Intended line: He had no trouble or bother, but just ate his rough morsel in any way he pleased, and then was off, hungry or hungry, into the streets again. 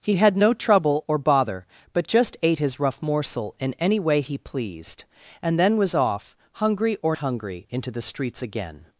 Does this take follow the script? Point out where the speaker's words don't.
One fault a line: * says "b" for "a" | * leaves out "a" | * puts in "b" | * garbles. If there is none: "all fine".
all fine